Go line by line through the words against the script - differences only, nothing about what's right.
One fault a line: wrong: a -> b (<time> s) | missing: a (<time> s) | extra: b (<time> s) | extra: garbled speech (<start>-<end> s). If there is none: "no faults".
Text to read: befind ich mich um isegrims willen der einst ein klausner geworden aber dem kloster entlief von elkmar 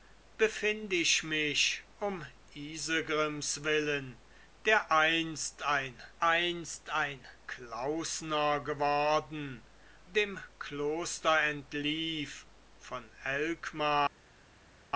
extra: einst ein (6.2 s)
missing: aber (9.7 s)